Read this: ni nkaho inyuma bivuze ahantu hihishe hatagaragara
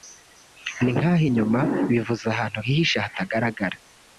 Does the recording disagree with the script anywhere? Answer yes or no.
no